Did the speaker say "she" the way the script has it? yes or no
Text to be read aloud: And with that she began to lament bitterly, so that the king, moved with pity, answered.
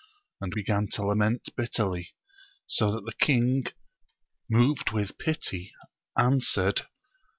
no